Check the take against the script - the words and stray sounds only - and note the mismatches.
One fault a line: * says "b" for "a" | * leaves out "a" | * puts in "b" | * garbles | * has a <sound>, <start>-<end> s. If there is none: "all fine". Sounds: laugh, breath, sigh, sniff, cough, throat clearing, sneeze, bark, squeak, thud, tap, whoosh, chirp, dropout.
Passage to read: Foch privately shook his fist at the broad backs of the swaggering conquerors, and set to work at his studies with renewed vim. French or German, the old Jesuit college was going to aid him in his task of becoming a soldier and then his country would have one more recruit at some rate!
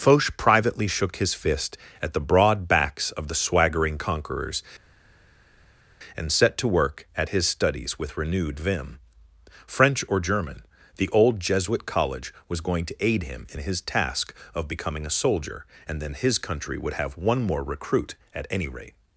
* says "any" for "some"